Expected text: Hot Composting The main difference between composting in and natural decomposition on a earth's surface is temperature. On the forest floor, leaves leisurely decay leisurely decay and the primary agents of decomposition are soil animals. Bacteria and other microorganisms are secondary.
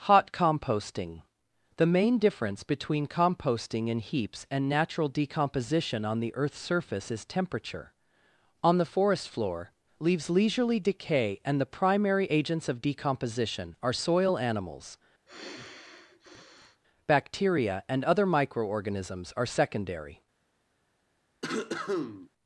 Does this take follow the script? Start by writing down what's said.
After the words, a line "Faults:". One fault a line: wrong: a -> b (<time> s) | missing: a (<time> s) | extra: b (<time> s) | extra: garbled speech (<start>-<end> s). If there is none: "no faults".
Hot Composting The main difference between composting in heaps and natural decomposition on the earth's surface is temperature. On the forest floor, leaves leisurely decay and the primary agents of decomposition are soil animals. Bacteria and other microorganisms are secondary.
Faults:
extra: heaps (4.0 s)
wrong: a -> the (6.2 s)
missing: leisurely decay (11.4 s)